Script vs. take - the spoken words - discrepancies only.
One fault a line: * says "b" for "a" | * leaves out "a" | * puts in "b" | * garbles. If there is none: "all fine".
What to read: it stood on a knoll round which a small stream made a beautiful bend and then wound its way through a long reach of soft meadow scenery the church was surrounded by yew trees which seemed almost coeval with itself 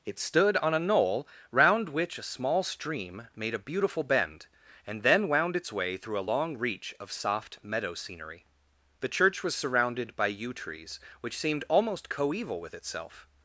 all fine